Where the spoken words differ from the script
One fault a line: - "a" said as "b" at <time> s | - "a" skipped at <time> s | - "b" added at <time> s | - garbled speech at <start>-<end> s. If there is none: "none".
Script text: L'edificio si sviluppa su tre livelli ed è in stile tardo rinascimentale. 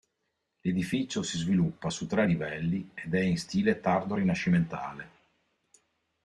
none